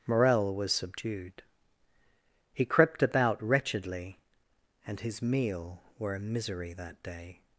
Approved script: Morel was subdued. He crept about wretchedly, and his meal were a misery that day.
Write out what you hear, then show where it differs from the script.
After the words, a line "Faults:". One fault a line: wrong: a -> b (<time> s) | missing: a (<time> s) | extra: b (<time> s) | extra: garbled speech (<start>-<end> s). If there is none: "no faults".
Morel was subdued. He crept about wretchedly, and his meal were a misery that day.
Faults:
no faults